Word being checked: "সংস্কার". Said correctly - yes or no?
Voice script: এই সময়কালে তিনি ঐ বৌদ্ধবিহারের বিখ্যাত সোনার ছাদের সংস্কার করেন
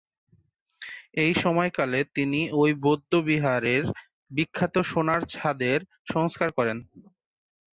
yes